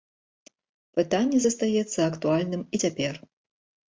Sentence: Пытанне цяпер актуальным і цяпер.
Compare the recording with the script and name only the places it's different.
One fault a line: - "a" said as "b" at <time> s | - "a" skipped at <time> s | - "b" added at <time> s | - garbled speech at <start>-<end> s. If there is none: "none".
- "цяпер" said as "застаецца" at 1.4 s